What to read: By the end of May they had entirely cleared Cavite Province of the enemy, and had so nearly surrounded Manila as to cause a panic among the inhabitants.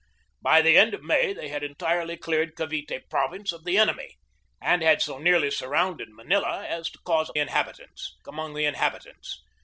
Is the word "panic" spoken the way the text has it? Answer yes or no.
no